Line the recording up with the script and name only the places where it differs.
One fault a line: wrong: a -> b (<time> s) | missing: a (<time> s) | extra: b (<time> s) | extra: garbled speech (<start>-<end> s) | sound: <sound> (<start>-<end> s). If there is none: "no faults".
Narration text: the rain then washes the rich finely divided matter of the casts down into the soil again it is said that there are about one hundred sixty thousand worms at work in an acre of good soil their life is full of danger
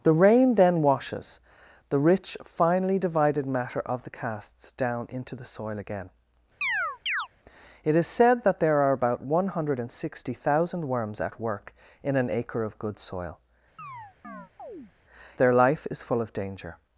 sound: chirp (6.6-7.3 s)
sound: chirp (13.8-14.9 s)